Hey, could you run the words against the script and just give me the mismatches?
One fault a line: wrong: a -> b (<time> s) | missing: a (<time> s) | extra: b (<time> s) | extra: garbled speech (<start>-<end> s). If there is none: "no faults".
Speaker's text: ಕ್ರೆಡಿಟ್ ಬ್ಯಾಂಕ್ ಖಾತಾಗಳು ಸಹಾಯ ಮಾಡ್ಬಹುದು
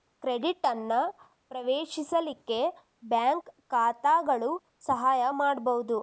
extra: ಅನ್ನ ಪ್ರವೇಶಿಸಲಿಕ್ಕೆ (0.7 s)